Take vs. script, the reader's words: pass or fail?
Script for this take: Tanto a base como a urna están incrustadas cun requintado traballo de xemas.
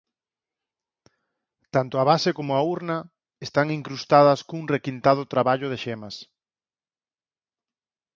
pass